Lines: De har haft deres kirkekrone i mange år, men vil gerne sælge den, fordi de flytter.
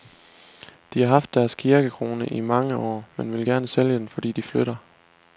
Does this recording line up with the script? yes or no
yes